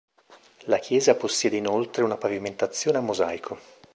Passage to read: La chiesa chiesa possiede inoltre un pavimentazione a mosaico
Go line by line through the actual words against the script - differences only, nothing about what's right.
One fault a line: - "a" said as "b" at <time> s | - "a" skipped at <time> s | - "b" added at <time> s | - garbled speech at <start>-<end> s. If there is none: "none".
- "chiesa" skipped at 1.1 s
- "un" said as "una" at 2.0 s